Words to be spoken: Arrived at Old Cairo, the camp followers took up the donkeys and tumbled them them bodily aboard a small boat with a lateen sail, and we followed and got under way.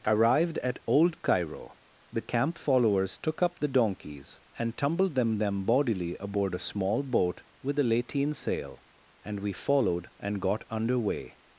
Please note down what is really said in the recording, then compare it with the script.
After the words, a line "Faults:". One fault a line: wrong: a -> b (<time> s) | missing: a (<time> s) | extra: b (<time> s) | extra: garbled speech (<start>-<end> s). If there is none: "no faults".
Arrived at Old Cairo, the camp followers took up the donkeys and tumbled them them bodily aboard a small boat with a lateen sail, and we followed and got under way.
Faults:
no faults